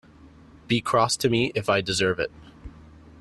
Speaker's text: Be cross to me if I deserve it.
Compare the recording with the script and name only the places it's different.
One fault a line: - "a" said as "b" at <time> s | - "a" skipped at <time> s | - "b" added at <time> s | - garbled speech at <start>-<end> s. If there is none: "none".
none